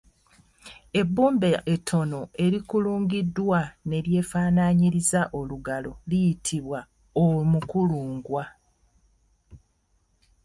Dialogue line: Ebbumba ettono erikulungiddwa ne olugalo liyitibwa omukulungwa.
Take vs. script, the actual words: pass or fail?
fail